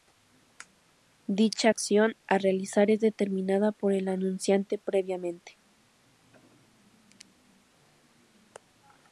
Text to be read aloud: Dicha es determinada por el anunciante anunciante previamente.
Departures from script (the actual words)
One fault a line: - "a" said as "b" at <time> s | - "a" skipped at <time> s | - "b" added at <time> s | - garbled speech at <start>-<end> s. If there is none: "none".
- "acción a realizar" added at 1.7 s
- "anunciante" skipped at 4.8 s